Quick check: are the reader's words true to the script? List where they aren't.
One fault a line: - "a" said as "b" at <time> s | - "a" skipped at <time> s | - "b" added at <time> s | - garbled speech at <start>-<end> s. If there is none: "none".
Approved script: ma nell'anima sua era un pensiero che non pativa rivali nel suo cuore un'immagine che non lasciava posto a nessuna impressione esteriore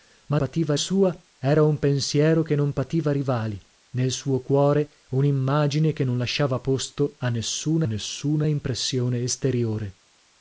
- "nell'anima" said as "pativa" at 0.3 s
- "nessuna" added at 7.8 s